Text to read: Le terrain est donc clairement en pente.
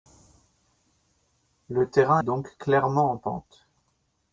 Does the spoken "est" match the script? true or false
false